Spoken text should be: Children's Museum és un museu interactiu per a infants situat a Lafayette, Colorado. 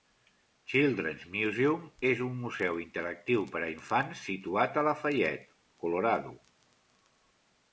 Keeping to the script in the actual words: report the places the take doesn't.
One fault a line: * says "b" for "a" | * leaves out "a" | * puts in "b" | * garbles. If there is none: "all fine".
all fine